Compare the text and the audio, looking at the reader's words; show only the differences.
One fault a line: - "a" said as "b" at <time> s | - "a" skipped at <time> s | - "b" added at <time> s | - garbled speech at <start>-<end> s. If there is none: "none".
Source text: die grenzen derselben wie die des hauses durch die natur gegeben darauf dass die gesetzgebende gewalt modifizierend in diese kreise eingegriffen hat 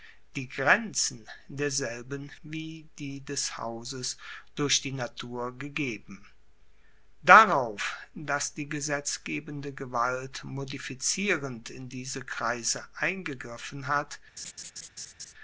none